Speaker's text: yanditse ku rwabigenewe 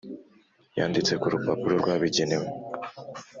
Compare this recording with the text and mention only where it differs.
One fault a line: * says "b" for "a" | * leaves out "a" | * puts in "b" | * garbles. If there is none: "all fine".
* puts in "rupapuro"